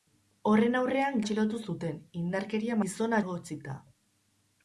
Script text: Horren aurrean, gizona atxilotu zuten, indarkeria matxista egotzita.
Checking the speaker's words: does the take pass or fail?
fail